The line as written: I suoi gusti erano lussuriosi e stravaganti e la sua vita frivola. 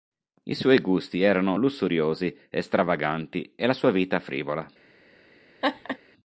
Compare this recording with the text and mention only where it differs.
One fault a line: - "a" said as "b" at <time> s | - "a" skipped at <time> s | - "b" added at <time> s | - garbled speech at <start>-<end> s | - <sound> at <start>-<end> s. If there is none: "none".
- laugh at 5.6-6.0 s